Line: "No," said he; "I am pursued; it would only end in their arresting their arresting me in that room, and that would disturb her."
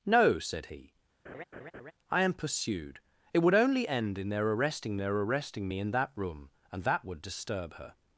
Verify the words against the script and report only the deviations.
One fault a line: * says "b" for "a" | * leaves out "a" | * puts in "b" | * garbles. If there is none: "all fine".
all fine